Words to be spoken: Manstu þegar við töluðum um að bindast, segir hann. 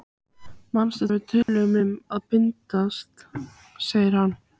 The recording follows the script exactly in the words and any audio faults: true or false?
false